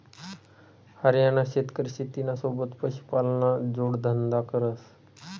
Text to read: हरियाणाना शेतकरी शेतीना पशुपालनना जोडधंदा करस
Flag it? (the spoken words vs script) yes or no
yes